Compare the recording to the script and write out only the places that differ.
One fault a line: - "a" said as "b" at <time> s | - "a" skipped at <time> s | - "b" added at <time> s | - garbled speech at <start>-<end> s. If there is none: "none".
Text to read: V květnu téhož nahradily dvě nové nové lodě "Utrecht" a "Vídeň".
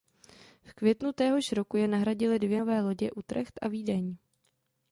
- "roku je" added at 1.5 s
- "nové" skipped at 2.8 s